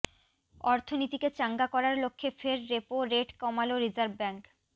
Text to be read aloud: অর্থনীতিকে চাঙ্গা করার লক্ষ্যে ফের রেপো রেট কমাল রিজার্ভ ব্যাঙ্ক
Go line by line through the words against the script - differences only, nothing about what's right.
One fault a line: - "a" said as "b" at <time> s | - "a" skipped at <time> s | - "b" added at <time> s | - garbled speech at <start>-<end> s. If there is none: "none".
none